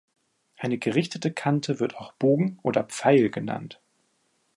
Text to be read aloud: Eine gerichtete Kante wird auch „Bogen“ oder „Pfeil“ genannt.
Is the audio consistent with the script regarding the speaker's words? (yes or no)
yes